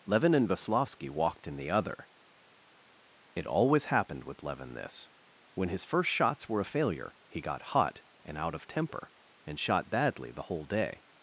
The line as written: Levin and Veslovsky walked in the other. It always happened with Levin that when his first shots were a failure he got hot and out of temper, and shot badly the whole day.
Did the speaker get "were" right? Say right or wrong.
right